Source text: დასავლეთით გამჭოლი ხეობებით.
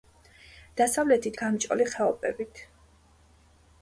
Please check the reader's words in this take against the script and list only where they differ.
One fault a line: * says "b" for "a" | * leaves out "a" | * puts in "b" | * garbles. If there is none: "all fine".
all fine